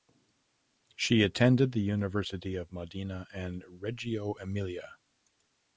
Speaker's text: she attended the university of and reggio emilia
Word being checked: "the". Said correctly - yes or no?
yes